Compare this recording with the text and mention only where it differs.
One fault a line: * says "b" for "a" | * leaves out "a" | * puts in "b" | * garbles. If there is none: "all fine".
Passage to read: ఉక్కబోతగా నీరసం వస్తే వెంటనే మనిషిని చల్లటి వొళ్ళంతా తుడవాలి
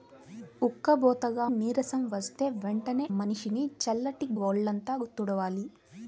all fine